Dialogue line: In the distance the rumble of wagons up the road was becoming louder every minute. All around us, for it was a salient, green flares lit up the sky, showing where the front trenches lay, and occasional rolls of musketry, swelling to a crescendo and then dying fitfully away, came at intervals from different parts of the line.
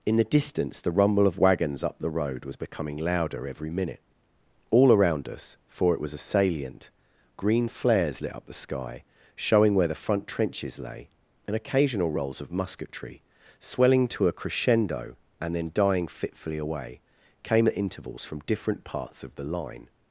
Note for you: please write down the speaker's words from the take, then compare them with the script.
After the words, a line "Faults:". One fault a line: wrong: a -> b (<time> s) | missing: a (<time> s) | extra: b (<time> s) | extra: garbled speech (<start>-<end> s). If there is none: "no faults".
In the distance the rumble of wagons up the road was becoming louder every minute. All around us, for it was a salient, green flares lit up the sky, showing where the front trenches lay, and occasional rolls of musketry, swelling to a crescendo and then dying fitfully away, came at intervals from different parts of the line.
Faults:
no faults